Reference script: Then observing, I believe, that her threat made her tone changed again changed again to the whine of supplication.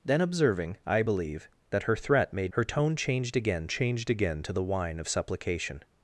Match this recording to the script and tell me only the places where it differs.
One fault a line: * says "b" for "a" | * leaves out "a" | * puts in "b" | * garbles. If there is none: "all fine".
all fine